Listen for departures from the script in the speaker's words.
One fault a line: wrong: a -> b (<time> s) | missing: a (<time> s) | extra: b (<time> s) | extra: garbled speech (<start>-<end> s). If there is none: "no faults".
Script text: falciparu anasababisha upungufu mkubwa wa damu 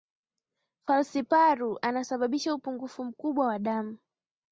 no faults